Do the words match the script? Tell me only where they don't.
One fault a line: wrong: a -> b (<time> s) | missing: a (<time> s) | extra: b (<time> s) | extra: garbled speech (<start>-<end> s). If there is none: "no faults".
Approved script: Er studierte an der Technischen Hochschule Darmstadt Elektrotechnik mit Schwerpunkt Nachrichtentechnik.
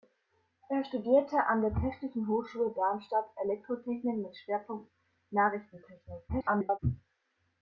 extra: garbled speech (6.3-6.8 s)